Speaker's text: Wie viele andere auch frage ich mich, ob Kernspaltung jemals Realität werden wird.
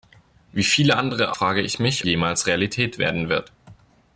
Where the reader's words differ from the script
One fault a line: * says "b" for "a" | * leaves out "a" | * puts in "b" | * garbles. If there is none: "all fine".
* leaves out "auch"
* leaves out "ob Kernspaltung"